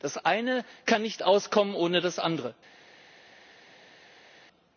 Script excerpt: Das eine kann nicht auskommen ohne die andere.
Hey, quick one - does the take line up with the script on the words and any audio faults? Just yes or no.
no